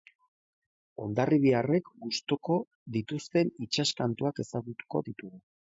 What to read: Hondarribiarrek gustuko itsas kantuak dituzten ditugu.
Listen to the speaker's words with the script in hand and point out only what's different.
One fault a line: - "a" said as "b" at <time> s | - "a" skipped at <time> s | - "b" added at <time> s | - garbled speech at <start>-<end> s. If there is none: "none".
- "dituzten" added at 3.0 s
- "dituzten" said as "ezagutuko" at 4.5 s